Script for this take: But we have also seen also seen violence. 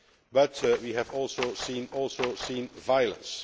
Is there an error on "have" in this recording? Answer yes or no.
no